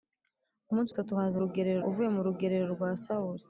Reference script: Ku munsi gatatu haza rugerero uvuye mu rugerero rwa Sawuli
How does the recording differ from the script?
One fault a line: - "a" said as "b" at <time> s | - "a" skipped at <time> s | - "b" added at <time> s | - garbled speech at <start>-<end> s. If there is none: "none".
none